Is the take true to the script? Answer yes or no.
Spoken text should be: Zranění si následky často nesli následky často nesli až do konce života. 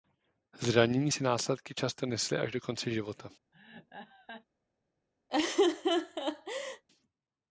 no